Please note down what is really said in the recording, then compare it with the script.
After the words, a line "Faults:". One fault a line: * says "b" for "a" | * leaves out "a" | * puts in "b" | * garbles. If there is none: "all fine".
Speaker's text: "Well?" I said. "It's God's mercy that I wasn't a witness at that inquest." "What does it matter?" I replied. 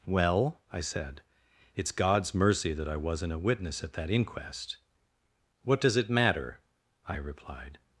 "Well?" I said. "It's God's mercy that I wasn't a witness at that inquest." "What does it matter?" I replied.
Faults:
all fine